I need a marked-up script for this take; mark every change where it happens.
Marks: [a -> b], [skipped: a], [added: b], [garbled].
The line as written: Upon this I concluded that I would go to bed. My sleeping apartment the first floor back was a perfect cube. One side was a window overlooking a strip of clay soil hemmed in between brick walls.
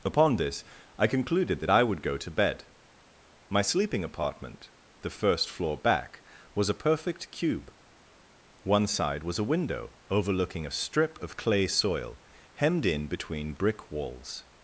Upon this I concluded that I would go to bed. My sleeping apartment the first floor back was a perfect cube. One side was a window overlooking a strip of clay soil hemmed in between brick walls.